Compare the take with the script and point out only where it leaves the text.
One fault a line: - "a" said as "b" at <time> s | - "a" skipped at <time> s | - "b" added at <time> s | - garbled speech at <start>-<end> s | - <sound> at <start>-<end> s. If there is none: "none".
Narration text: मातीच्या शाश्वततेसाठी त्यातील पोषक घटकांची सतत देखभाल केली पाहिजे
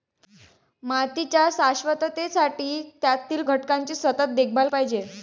- "पोषक" skipped at 3.4 s
- "केली" skipped at 4.7 s